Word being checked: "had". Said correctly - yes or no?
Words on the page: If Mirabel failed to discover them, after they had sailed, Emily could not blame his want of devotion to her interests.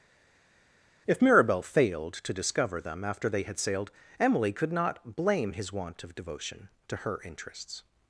yes